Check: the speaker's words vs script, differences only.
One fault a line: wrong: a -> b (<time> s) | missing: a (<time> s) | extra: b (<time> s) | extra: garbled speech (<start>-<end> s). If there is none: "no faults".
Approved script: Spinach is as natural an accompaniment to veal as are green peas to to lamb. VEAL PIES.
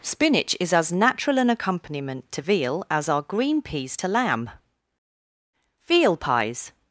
missing: to (4.1 s)